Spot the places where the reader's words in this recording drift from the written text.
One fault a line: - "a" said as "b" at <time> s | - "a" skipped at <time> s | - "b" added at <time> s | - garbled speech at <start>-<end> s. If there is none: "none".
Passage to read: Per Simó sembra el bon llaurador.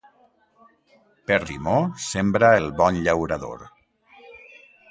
none